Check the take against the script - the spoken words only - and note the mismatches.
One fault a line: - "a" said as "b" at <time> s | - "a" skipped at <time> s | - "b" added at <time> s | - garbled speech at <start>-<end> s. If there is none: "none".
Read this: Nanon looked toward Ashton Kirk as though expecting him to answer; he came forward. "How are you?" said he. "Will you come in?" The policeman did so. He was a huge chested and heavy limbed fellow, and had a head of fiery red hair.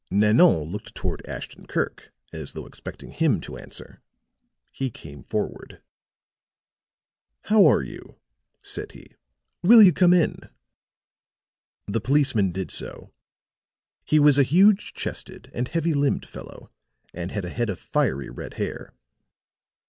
none